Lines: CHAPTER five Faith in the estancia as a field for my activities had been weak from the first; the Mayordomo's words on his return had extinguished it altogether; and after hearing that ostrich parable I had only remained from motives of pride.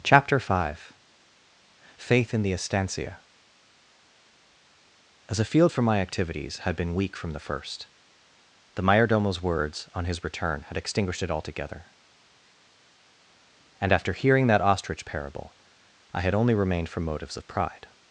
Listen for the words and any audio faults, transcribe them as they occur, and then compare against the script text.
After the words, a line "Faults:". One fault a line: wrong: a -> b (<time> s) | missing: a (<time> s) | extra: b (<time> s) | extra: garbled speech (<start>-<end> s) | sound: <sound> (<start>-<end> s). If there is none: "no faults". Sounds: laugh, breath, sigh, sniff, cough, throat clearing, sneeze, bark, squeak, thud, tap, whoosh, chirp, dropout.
CHAPTER five Faith in the estancia as a field for my activities had been weak from the first; the Mayordomo's words on his return had extinguished it altogether; and after hearing that ostrich parable I had only remained from motives of pride.
Faults:
no faults